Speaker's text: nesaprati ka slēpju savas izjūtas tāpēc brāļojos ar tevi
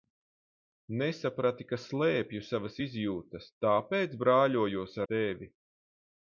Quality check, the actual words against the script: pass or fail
fail